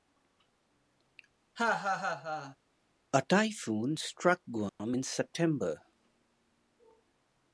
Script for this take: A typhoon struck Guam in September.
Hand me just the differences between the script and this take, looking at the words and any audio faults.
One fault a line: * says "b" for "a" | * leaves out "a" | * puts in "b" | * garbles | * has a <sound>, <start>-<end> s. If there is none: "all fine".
* has a laugh, 1.6-2.6 s
* has a dropout, 4.7-4.8 s